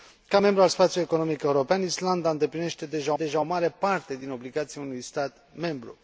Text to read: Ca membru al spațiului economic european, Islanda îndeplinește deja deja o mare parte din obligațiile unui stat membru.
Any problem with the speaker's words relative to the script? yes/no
no